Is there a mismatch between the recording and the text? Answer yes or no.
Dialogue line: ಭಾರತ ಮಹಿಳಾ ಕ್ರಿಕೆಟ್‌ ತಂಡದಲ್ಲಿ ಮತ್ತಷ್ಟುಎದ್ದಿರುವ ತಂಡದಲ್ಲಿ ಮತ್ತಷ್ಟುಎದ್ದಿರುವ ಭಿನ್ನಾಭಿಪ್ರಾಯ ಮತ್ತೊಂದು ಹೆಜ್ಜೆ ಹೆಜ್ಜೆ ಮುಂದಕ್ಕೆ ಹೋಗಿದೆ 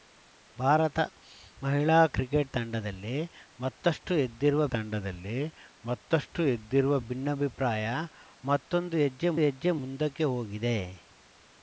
no